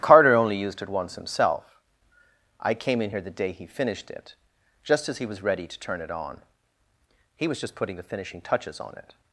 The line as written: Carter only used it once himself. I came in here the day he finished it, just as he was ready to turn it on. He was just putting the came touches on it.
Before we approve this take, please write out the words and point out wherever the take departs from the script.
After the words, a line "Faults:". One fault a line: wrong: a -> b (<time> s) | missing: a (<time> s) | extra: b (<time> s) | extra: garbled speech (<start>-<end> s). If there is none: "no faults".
Carter only used it once himself. I came in here the day he finished it, just as he was ready to turn it on. He was just putting the finishing touches on it.
Faults:
wrong: came -> finishing (8.0 s)